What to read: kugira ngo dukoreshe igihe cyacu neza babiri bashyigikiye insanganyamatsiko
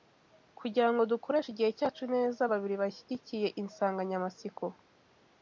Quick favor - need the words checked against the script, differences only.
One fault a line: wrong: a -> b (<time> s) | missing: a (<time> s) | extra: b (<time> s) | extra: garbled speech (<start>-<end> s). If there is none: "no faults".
no faults